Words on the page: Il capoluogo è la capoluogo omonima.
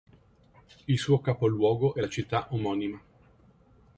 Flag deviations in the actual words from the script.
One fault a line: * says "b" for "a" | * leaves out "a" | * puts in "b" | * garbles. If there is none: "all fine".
* puts in "suo"
* says "città" for "capoluogo"